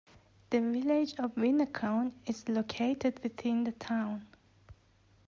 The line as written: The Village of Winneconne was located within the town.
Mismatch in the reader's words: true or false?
true